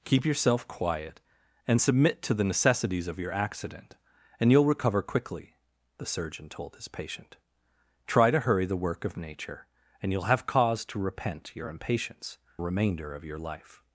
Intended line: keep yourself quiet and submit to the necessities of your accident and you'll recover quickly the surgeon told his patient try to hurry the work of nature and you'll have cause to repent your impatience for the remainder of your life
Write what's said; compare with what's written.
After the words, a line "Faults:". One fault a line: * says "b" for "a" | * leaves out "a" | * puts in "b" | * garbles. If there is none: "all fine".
keep yourself quiet and submit to the necessities of your accident and you'll recover quickly the surgeon told his patient try to hurry the work of nature and you'll have cause to repent your impatience remainder of your life
Faults:
* leaves out "for the"